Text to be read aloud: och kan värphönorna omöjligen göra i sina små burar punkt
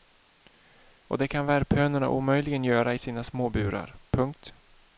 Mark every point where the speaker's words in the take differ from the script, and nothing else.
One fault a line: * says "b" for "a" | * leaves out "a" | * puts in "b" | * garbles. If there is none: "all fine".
* puts in "det"